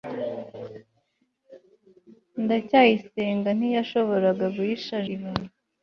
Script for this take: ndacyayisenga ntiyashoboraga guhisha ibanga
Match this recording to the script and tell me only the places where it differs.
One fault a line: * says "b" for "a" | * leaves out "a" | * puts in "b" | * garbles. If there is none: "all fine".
all fine